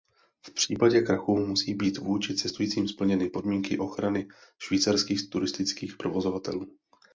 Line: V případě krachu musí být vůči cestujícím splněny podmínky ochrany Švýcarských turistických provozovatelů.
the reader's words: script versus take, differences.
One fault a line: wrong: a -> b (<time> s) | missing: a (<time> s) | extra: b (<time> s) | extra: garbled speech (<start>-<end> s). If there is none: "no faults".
no faults